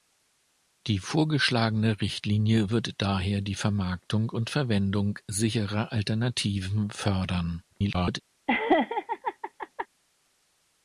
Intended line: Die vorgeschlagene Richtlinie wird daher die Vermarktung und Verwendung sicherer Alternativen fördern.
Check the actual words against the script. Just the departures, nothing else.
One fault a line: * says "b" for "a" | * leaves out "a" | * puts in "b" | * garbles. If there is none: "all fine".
* garbles